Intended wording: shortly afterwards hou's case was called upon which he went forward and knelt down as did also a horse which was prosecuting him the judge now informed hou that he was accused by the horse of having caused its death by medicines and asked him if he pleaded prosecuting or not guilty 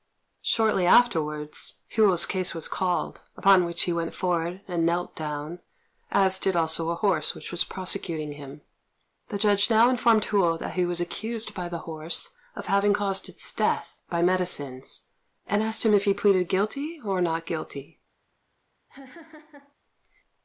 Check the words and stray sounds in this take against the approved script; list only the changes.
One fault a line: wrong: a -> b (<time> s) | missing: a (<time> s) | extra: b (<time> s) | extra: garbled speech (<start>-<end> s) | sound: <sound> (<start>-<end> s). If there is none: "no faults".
wrong: prosecuting -> guilty (16.5 s)
sound: laugh (18.9-19.7 s)